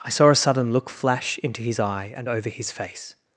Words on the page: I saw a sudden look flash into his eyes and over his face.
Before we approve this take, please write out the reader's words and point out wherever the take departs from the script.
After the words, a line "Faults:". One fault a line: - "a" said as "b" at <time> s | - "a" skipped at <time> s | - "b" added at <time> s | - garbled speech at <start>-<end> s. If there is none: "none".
I saw a sudden look flash into his eye and over his face.
Faults:
- "eyes" said as "eye" at 1.8 s